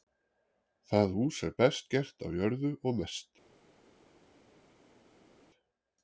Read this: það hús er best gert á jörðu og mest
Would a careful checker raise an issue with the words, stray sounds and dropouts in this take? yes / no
no